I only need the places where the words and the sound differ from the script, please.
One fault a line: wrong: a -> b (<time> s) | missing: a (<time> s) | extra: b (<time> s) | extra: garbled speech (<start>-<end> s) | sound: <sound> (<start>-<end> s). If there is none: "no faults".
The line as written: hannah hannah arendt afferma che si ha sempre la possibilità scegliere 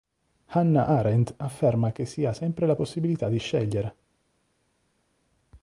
missing: hannah (0.9 s)
extra: di (3.3 s)